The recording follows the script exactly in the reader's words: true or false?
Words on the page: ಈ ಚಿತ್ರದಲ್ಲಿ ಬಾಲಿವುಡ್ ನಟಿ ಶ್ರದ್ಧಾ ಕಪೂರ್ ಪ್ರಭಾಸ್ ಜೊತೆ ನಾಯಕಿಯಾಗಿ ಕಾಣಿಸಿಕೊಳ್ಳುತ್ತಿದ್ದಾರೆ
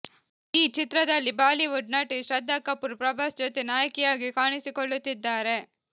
true